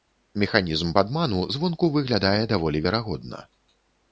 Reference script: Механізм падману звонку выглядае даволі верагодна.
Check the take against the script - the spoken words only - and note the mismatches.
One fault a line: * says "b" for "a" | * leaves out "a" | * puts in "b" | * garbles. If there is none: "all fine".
all fine